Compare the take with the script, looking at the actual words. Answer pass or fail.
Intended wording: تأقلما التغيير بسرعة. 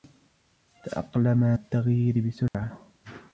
pass